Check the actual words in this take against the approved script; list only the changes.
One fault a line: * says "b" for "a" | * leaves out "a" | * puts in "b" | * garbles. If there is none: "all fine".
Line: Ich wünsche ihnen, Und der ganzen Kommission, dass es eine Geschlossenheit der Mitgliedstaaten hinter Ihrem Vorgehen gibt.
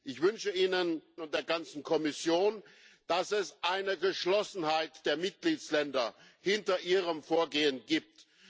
all fine